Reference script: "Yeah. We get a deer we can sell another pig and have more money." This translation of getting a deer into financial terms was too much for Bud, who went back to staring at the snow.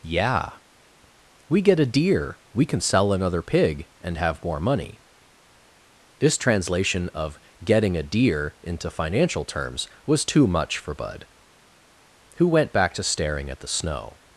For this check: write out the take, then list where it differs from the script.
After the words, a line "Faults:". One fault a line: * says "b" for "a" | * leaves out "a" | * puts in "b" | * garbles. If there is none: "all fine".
"Yeah. We get a deer we can sell another pig and have more money." This translation of getting a deer into financial terms was too much for Bud, who went back to staring at the snow.
Faults:
all fine